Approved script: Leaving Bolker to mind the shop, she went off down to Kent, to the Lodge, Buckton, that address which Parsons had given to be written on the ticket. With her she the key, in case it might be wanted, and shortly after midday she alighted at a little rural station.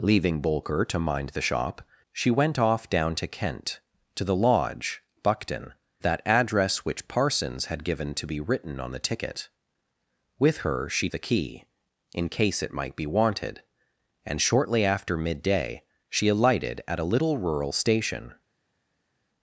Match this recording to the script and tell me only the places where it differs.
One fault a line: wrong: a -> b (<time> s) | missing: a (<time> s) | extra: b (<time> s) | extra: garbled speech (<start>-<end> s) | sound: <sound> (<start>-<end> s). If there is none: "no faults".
no faults